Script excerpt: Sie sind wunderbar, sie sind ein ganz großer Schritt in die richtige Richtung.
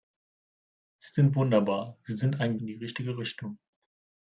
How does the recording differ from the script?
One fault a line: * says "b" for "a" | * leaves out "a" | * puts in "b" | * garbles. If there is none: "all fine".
* leaves out "ganz großer Schritt"